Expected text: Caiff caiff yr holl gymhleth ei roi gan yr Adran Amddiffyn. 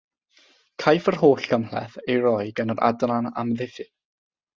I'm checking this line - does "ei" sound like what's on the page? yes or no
yes